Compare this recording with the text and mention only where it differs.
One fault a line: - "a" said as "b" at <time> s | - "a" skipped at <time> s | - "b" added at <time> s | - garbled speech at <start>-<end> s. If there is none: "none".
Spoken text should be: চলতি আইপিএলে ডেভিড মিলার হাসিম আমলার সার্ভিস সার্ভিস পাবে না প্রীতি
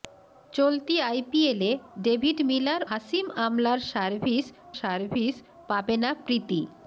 none